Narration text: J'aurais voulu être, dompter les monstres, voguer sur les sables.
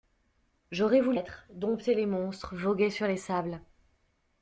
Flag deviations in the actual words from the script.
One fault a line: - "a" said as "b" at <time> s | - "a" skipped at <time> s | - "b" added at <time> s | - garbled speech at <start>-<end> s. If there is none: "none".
none